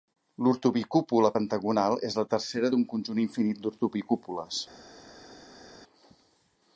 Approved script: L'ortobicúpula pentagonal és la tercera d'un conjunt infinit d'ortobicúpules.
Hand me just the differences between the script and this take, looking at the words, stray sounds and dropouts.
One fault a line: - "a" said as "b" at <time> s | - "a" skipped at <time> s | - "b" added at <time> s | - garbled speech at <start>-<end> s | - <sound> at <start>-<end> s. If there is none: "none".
none